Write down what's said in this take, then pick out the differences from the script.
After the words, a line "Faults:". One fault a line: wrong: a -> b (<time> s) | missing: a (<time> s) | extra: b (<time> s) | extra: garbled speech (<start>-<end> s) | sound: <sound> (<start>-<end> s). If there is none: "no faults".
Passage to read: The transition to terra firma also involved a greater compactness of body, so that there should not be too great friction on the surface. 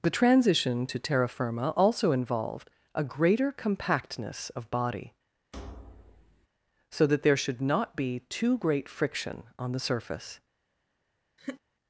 The transition to terra firma also involved a greater compactness of body, so that there should not be too great friction on the surface.
Faults:
sound: thud (5.5-6.5 s)
sound: laugh (11.4-11.6 s)